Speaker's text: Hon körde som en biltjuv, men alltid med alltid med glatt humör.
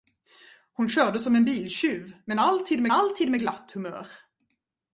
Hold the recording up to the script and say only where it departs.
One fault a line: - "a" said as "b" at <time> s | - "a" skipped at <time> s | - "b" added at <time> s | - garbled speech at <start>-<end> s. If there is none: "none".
none